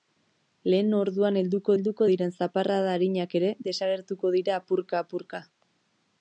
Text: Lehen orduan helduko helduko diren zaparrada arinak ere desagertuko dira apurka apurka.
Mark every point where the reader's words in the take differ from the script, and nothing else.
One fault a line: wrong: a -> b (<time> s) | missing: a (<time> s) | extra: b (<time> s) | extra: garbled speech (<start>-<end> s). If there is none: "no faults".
no faults